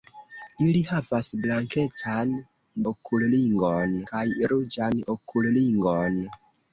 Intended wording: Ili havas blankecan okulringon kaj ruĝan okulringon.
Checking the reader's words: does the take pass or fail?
pass